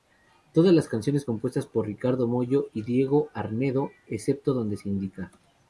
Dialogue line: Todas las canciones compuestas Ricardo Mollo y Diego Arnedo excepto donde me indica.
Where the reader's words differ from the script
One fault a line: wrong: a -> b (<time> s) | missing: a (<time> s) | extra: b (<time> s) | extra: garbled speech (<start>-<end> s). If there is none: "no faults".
extra: por (1.7 s)
wrong: me -> se (4.8 s)